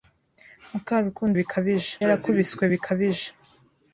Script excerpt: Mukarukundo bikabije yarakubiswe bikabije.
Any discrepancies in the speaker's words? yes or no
no